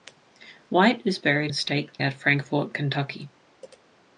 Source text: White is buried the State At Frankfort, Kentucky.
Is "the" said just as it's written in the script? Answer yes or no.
yes